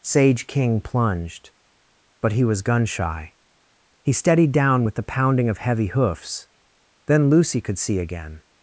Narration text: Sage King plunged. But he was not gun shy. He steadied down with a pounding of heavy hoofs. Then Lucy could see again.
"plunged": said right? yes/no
yes